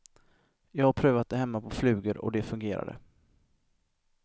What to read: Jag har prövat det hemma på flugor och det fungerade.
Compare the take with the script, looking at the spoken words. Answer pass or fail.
pass